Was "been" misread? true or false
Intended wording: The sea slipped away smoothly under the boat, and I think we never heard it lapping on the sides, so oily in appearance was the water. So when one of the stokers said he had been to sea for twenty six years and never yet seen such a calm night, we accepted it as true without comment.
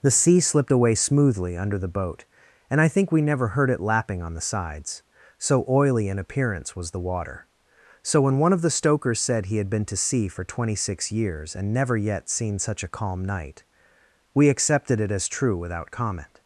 false